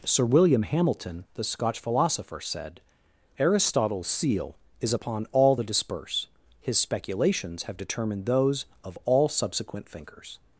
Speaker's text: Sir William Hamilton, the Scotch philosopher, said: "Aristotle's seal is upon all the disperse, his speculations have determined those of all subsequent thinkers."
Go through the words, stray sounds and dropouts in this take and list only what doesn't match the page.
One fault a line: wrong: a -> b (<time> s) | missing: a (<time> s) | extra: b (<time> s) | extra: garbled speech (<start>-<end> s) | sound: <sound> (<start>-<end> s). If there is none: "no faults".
no faults